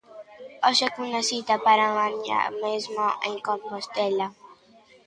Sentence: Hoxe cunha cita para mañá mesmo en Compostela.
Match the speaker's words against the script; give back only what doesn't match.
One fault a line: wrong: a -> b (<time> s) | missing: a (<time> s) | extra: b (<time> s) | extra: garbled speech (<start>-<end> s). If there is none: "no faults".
no faults